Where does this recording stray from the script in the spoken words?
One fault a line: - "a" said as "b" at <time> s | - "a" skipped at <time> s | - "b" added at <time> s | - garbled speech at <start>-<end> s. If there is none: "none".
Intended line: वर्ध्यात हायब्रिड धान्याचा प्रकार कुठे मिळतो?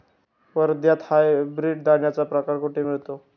none